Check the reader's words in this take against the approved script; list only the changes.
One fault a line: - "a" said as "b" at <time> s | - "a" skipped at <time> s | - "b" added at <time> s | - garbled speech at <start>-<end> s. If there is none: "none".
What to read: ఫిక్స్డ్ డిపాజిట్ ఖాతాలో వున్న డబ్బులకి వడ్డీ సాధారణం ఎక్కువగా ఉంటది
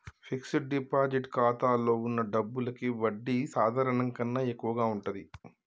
- "కన్నా" added at 4.1 s